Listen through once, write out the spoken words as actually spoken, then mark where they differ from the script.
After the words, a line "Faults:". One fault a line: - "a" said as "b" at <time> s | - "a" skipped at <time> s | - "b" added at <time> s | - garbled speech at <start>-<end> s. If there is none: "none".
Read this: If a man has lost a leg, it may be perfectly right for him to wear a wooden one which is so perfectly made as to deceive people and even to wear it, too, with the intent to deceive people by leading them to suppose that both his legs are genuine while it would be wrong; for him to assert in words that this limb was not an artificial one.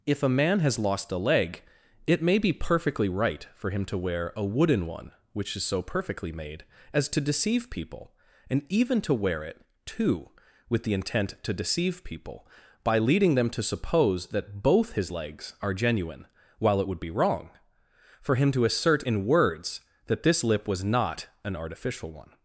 If a man has lost a leg, it may be perfectly right for him to wear a wooden one which is so perfectly made as to deceive people and even to wear it, too, with the intent to deceive people by leading them to suppose that both his legs are genuine while it would be wrong; for him to assert in words that this lip was not an artificial one.
Faults:
- "limb" said as "lip" at 20.4 s